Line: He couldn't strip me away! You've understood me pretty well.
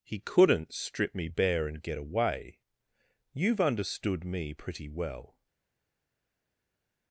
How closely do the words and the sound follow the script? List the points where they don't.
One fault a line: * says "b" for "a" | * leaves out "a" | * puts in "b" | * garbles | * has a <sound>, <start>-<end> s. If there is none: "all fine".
* puts in "bare and get"